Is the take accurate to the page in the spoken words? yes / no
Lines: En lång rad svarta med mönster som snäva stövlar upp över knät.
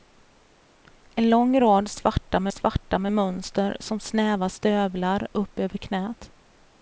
no